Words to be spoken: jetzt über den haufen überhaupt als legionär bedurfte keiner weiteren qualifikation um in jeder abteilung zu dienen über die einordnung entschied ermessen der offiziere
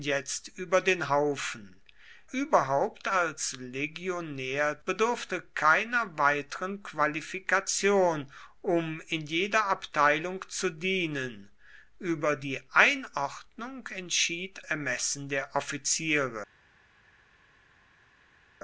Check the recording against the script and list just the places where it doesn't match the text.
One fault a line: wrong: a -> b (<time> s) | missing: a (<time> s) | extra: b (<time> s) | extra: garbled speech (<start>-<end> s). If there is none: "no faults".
no faults